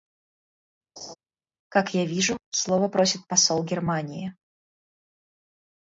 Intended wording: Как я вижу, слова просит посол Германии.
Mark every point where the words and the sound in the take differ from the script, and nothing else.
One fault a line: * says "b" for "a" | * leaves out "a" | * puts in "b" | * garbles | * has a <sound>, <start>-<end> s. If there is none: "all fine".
* has a laugh, 1.0-1.2 s